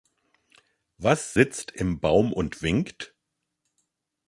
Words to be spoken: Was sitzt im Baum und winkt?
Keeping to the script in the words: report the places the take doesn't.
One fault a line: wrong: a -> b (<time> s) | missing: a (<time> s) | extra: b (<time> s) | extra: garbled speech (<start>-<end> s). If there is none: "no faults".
no faults